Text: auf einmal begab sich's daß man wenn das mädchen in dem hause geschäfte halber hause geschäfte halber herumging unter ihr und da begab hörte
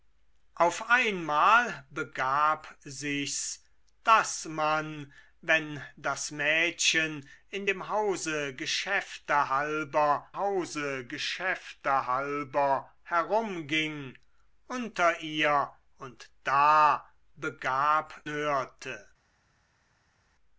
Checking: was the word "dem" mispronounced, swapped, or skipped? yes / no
no